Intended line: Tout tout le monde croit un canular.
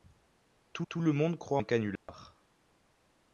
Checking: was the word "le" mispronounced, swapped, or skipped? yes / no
no